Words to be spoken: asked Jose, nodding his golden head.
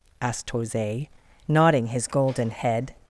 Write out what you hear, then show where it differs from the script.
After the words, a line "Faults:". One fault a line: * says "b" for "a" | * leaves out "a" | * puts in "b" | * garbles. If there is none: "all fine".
asked Jose, nodding his golden head.
Faults:
all fine